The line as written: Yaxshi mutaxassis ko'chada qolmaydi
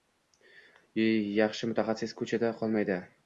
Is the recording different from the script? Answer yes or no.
no